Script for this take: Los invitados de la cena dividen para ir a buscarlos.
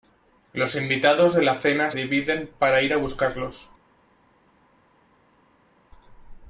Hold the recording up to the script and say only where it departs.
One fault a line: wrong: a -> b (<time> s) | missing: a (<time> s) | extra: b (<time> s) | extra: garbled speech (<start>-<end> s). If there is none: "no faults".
no faults